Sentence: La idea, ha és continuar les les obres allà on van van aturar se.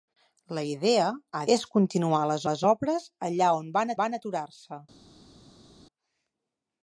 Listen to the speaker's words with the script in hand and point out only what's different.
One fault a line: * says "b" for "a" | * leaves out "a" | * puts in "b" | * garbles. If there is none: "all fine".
all fine